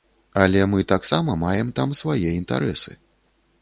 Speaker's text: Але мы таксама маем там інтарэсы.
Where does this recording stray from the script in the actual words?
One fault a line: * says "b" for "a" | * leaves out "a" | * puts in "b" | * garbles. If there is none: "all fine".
* puts in "свае"